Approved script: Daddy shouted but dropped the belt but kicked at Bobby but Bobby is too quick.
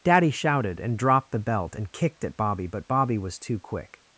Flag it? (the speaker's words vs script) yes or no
yes